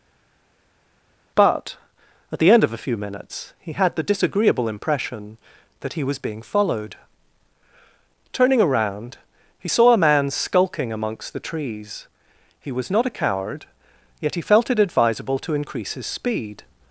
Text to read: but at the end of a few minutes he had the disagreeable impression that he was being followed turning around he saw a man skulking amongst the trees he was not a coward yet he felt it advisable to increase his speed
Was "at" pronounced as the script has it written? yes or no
yes